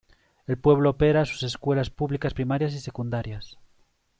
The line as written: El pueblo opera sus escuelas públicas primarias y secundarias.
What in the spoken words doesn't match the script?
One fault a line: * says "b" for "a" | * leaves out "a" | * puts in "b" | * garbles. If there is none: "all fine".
all fine